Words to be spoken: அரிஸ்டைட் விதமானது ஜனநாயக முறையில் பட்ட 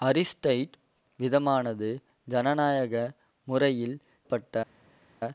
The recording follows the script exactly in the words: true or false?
true